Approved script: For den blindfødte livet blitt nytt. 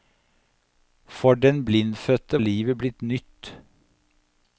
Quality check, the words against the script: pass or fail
pass